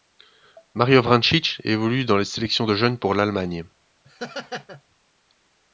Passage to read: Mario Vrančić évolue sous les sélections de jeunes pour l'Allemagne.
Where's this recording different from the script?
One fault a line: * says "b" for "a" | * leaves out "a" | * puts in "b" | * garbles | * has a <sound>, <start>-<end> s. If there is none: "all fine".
* says "dans" for "sous"
* has a laugh, 4.0-4.8 s